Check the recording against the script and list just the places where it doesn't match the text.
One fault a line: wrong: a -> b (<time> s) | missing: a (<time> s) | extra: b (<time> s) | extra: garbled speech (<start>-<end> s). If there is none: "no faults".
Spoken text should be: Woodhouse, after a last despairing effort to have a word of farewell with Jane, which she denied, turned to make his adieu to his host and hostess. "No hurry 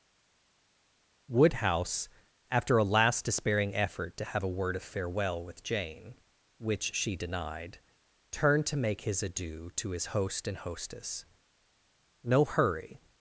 no faults